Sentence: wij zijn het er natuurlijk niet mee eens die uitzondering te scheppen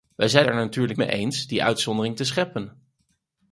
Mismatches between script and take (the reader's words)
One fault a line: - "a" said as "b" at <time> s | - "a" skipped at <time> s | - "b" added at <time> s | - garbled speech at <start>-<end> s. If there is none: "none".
- "het" skipped at 0.5 s
- "niet" skipped at 1.0 s